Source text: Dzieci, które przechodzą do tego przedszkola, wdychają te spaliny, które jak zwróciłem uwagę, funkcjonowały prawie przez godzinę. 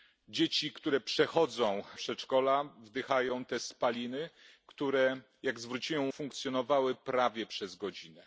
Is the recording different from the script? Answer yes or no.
yes